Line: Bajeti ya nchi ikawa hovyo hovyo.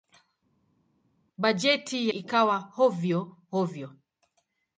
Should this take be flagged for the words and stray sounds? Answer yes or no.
yes